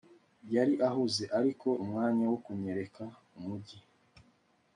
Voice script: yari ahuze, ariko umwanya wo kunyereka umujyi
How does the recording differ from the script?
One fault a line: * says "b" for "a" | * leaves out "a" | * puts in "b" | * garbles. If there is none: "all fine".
all fine